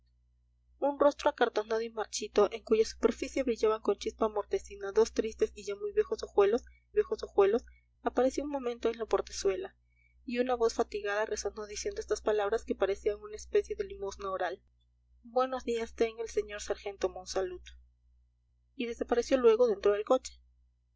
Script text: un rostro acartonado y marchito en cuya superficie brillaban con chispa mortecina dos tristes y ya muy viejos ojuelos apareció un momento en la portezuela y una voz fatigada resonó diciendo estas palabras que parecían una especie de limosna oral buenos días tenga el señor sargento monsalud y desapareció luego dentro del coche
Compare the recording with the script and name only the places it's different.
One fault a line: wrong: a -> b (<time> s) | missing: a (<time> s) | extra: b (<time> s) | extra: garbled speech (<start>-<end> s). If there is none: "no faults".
extra: viejos ojuelos (6.9 s)